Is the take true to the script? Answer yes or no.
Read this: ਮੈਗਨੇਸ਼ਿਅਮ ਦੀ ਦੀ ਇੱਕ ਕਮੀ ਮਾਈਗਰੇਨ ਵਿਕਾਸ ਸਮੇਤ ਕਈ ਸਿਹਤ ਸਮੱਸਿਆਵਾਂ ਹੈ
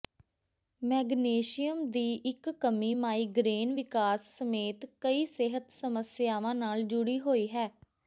no